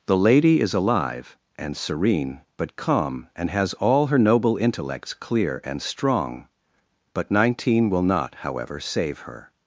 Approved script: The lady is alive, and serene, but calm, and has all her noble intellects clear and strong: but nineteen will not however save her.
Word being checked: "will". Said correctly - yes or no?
yes